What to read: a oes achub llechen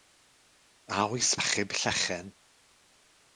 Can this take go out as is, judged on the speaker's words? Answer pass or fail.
pass